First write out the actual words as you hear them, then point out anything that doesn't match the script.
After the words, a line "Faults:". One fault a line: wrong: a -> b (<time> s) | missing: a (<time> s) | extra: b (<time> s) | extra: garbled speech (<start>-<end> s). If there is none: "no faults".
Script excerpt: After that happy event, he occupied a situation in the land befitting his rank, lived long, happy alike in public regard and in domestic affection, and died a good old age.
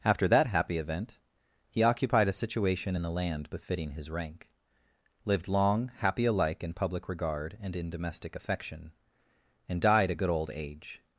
After that happy event, he occupied a situation in the land befitting his rank, lived long, happy alike in public regard and in domestic affection, and died a good old age.
Faults:
no faults